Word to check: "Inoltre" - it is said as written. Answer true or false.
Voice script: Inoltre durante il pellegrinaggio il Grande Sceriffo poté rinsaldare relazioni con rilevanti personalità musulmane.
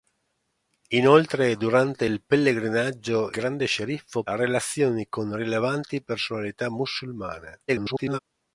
true